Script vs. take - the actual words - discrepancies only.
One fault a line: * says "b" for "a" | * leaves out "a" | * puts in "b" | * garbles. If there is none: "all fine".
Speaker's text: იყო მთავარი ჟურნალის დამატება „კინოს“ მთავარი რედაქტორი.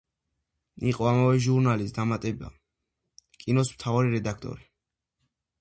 * says "ამავე" for "მთავარი"